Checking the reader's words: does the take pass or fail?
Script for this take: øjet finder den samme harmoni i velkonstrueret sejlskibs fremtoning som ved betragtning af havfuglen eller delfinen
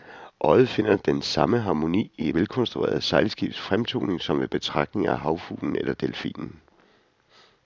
pass